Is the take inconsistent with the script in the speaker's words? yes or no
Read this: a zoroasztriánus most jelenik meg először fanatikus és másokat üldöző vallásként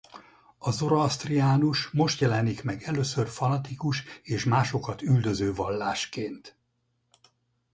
no